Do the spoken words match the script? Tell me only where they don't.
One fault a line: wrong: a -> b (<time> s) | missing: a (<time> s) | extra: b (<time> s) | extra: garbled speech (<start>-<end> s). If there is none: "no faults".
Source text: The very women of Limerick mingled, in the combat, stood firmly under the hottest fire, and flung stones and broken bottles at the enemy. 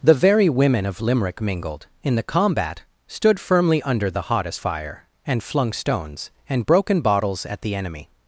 no faults